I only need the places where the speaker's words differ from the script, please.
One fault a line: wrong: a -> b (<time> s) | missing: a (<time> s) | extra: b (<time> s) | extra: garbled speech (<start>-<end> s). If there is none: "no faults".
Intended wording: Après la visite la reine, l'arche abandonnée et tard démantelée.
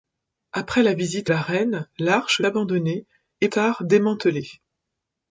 no faults